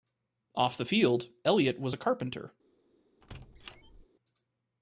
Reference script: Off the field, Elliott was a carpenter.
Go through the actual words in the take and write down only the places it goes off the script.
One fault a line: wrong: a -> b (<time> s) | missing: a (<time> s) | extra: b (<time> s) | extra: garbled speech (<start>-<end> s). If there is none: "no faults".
no faults